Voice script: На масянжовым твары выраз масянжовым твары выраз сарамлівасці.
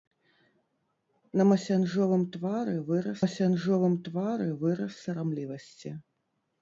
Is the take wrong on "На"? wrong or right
right